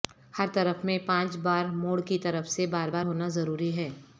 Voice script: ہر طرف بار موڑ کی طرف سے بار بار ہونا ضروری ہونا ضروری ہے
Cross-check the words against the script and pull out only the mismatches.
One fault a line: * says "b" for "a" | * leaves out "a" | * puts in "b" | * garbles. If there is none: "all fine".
* puts in "میں پانچ"
* leaves out "ہونا ضروری"